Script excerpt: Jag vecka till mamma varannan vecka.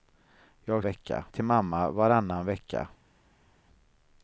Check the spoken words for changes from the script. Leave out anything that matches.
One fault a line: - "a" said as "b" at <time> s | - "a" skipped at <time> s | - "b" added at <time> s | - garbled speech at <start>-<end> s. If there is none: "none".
none